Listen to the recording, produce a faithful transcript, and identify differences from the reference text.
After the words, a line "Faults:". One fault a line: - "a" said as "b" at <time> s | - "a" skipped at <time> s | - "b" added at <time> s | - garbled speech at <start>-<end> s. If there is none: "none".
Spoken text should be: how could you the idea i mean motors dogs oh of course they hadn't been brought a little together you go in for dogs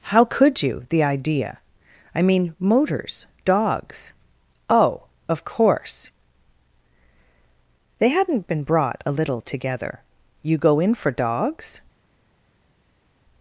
how could you the idea i mean motors dogs oh of course they hadn't been brought a little together you go in for dogs
Faults:
none